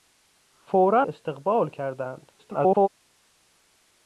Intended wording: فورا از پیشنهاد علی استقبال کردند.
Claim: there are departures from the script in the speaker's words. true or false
true